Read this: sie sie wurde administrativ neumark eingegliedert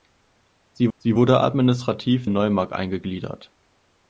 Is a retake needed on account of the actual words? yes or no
no